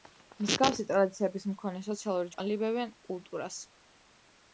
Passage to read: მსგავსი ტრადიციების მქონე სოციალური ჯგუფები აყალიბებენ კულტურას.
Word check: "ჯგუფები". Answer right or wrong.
wrong